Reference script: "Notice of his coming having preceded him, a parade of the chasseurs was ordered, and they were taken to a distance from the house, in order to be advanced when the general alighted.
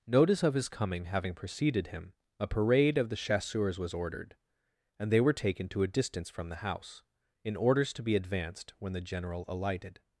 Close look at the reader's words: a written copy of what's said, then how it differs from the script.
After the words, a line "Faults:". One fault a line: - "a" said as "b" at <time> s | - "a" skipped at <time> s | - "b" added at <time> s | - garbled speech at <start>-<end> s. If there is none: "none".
"Notice of his coming having preceded him, a parade of the chasseurs was ordered, and they were taken to a distance from the house, in orders to be advanced when the general alighted.
Faults:
- "order" said as "orders" at 7.5 s